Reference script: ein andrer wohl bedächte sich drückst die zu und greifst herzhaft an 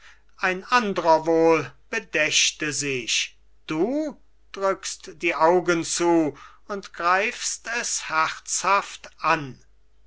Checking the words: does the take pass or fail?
fail